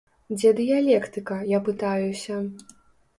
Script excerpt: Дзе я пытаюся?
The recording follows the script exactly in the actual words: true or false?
false